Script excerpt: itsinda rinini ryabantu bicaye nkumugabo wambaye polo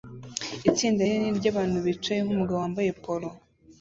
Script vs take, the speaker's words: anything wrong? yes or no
no